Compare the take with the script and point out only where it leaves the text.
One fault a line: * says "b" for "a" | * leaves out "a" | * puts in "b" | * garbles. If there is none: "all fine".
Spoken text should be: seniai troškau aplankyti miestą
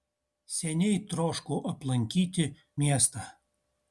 all fine